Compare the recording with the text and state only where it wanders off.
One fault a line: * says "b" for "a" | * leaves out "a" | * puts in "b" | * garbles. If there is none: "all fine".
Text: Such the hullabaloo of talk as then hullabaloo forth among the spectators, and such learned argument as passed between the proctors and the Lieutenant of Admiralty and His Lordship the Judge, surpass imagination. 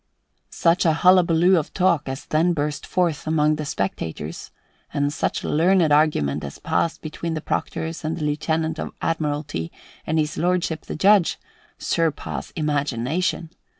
* says "a" for "the"
* says "burst" for "hullabaloo"